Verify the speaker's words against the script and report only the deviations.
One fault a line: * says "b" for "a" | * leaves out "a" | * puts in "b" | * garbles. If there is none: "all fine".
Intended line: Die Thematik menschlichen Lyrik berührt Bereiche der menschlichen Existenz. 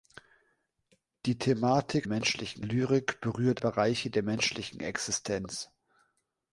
all fine